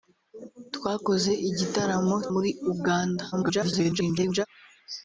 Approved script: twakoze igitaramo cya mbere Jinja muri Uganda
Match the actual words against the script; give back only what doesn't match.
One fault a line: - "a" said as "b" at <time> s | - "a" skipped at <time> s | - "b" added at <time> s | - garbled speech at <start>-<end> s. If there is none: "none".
- "cya mbere Jinja" skipped at 2.1 s
- garbled speech at 3.3-4.5 s